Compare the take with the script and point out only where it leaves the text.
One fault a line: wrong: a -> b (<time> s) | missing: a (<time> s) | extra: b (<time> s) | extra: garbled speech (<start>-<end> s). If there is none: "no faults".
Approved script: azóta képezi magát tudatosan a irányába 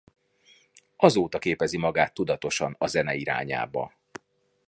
extra: zene (2.9 s)